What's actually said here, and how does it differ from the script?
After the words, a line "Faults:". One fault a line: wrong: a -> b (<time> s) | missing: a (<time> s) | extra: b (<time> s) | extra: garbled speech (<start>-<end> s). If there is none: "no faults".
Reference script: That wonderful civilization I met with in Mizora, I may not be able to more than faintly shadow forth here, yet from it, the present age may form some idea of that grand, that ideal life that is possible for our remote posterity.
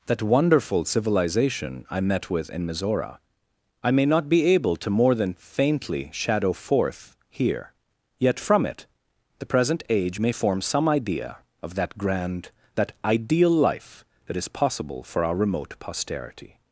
That wonderful civilization I met with in Mizora, I may not be able to more than faintly shadow forth here, yet from it, the present age may form some idea of that grand, that ideal life that is possible for our remote posterity.
Faults:
no faults